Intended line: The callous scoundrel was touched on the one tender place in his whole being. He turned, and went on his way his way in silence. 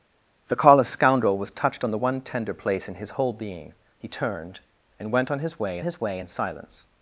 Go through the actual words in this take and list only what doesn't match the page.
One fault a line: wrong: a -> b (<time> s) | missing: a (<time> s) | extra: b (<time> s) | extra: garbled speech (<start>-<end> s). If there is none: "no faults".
no faults